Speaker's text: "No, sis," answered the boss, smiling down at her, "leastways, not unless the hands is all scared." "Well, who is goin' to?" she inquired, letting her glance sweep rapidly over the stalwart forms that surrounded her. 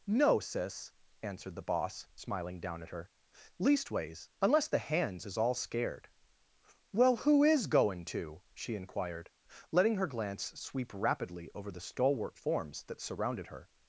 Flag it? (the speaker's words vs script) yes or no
yes